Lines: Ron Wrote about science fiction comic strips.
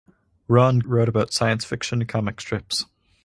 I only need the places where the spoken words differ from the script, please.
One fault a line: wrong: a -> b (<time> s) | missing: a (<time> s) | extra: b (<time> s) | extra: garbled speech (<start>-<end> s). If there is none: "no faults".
no faults